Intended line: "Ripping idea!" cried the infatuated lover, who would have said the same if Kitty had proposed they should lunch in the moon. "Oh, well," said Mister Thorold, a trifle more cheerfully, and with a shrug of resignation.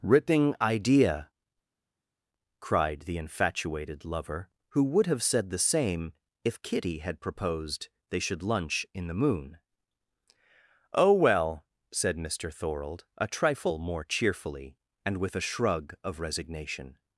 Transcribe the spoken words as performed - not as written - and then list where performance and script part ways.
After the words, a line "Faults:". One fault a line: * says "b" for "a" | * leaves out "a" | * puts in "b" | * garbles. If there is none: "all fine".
"Ripping idea!" cried the infatuated lover, who would have said the same if Kitty had proposed they should lunch in the moon. "Oh, well," said Mister Thorold, a trifle more cheerfully, and with a shrug of resignation.
Faults:
all fine